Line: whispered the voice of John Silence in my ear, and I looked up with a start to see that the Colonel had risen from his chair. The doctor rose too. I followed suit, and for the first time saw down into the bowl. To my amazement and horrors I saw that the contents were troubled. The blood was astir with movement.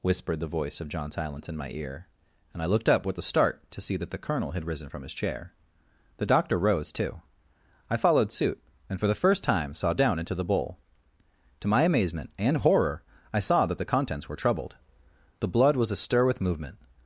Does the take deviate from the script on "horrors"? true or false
true